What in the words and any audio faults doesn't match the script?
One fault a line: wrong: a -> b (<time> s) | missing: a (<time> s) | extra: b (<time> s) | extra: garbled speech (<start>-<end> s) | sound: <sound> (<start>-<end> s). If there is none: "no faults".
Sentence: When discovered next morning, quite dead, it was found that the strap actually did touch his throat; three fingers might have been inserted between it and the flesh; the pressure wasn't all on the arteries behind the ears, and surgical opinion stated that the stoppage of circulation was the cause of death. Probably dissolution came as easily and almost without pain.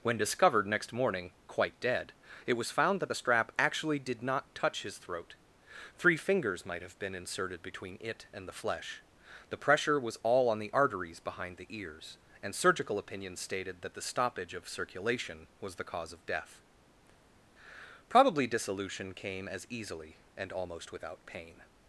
extra: not (4.2 s)
wrong: wasn't -> was (10.0 s)